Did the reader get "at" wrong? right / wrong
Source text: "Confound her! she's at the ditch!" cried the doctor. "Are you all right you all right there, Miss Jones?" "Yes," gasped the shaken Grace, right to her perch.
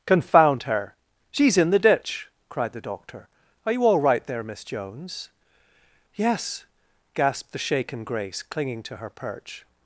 wrong